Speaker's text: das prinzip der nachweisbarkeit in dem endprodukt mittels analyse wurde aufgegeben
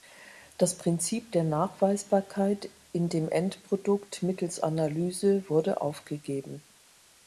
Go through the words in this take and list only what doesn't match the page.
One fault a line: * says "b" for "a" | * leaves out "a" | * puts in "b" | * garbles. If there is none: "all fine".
all fine